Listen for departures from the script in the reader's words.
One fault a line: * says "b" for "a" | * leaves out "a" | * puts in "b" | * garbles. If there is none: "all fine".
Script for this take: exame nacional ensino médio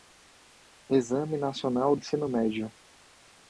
all fine